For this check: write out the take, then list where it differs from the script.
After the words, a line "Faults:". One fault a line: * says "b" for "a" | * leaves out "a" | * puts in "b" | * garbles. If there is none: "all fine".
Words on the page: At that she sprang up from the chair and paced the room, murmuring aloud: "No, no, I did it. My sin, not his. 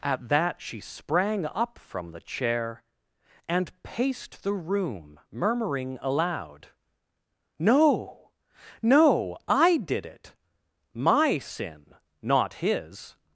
At that she sprang up from the chair and paced the room, murmuring aloud: "No, no, I did it. My sin, not his.
Faults:
all fine